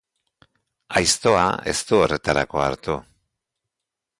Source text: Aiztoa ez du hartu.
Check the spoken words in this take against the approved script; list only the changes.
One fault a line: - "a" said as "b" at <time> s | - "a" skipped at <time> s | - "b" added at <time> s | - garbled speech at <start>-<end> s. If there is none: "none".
- "horretarako" added at 2.0 s